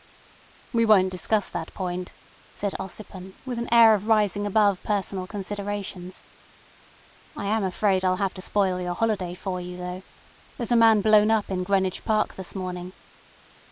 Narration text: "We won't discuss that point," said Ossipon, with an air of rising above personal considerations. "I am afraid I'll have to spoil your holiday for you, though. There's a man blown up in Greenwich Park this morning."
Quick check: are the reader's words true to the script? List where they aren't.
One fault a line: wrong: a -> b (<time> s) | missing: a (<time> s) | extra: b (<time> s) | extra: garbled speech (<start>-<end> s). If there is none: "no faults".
no faults